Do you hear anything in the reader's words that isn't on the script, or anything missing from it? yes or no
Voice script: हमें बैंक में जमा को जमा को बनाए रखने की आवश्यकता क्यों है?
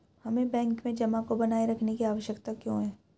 yes